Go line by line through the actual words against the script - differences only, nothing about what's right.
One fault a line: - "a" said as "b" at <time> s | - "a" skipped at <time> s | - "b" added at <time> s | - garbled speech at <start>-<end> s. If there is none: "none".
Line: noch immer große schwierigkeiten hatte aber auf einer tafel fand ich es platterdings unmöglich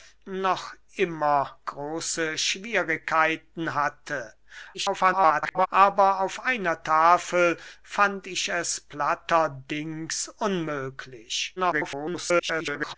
- garbled speech at 4.7-5.7 s
- garbled speech at 11.6-13.0 s